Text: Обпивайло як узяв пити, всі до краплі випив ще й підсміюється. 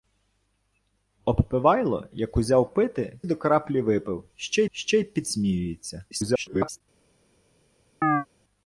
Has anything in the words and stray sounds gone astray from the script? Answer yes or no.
yes